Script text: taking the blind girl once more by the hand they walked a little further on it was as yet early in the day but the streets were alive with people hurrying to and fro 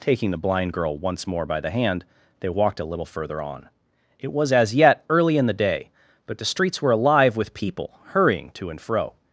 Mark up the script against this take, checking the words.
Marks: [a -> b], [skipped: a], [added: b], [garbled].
taking the blind girl once more by the hand they walked a little further on it was as yet early in the day but the streets were alive with people hurrying to and fro